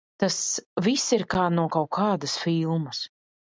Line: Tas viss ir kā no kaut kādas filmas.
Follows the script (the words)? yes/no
yes